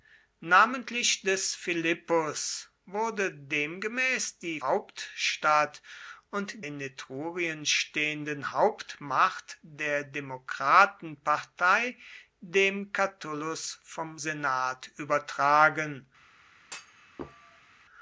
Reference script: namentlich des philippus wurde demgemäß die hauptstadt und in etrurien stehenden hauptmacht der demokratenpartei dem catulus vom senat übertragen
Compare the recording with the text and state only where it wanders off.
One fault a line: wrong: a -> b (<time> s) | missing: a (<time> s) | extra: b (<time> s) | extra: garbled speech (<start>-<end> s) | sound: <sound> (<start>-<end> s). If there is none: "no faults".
sound: thud (16.6-17.8 s)